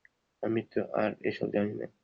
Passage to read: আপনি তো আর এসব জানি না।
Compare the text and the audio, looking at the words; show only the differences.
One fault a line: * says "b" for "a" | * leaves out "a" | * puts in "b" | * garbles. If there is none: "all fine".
* says "আমি" for "আপনি"